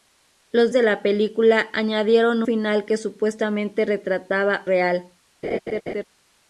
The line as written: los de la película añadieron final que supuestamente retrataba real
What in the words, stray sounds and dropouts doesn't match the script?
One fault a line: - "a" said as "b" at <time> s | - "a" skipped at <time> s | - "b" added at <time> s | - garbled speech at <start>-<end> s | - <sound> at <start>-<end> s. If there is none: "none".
- laugh at 5.4-6.0 s